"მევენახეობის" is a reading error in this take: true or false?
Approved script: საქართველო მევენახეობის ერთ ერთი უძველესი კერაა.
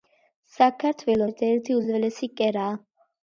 true